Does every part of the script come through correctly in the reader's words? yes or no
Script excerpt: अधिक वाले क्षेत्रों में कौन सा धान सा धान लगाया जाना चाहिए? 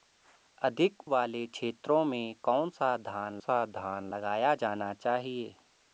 yes